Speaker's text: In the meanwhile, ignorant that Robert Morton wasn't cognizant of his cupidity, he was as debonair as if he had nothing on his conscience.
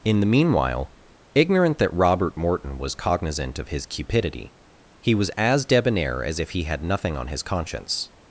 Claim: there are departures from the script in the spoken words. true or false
true